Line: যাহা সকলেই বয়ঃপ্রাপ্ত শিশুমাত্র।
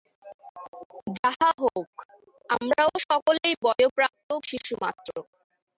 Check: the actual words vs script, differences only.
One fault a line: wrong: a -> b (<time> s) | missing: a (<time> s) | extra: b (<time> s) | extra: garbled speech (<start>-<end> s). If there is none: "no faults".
extra: হউক আমরাও (1.6 s)